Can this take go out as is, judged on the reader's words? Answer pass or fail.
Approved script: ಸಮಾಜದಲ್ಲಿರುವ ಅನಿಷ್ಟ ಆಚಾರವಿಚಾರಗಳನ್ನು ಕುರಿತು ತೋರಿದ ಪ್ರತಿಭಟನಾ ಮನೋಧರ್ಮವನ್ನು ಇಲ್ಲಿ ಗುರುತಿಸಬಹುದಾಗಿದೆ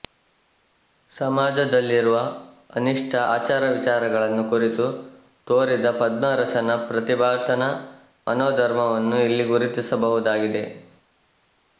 fail